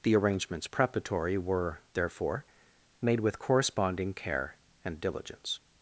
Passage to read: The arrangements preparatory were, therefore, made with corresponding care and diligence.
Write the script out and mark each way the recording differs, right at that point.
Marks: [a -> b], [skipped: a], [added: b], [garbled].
The arrangements preparatory were, therefore, made with corresponding care and diligence.